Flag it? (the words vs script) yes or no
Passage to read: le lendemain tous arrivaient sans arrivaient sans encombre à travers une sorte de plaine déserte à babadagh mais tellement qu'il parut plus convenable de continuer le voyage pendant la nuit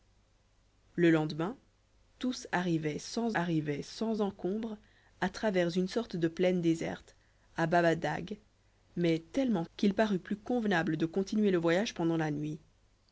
no